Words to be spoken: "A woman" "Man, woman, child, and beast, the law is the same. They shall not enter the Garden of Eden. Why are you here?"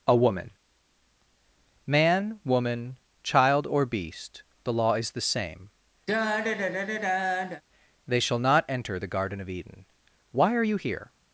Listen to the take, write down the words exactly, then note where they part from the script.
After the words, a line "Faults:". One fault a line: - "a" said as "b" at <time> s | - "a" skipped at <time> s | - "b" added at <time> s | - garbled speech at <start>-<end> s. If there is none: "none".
"A woman" "Man, woman, child, or beast, the law is the same. They shall not enter the Garden of Eden. Why are you here?"
Faults:
- "and" said as "or" at 3.7 s